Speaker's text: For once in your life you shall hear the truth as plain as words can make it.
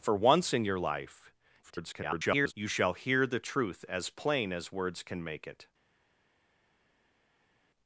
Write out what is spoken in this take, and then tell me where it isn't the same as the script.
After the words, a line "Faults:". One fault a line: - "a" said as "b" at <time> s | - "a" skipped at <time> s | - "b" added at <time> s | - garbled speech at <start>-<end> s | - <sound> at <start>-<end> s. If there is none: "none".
For once in your life [garbled] you shall hear the truth as plain as words can make it.
Faults:
- garbled speech at 1.6-2.5 s